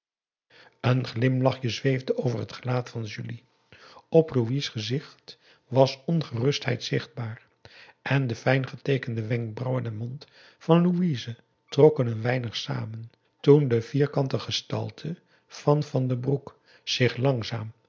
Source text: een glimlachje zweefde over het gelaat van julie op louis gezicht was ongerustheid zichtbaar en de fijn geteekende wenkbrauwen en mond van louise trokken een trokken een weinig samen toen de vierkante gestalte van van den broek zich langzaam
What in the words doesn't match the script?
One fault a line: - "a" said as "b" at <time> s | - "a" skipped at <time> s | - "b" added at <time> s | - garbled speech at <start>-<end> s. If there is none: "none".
- "trokken een" skipped at 12.2 s